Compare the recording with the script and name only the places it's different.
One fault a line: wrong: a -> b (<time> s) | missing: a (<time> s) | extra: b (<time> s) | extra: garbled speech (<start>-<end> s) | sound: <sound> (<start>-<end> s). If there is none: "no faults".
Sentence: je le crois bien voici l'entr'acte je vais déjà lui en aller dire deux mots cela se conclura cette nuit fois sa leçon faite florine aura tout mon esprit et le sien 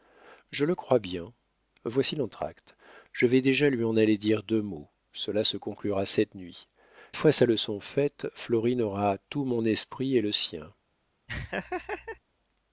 sound: laugh (11.3-12.2 s)